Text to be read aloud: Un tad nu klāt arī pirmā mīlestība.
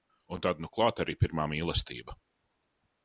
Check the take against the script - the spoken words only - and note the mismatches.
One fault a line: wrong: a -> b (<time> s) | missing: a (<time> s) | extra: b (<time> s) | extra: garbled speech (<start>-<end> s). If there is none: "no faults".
no faults